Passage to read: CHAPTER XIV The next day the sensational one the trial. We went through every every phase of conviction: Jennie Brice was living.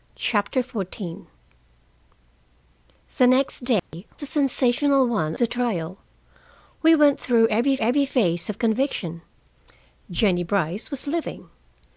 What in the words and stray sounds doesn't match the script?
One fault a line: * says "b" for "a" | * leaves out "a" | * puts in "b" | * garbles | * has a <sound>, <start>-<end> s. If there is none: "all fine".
* has a dropout, 3.8-3.9 s